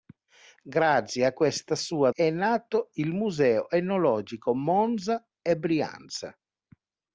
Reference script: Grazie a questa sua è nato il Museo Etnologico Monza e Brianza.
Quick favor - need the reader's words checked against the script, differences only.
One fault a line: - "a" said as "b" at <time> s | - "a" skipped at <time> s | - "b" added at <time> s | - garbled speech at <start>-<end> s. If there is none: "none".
none